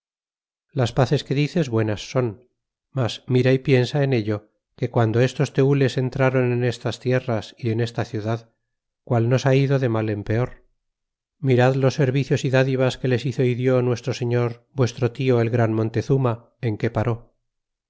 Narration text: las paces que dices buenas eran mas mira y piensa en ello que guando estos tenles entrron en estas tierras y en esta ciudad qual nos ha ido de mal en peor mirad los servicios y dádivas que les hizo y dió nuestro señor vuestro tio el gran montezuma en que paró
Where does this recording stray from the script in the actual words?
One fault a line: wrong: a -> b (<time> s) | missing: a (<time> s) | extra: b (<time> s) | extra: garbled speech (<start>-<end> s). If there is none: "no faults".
wrong: eran -> son (2.1 s)